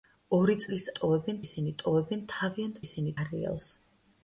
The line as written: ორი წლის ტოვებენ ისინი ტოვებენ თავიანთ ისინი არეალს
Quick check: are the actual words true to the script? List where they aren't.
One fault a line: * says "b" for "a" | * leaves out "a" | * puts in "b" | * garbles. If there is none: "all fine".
all fine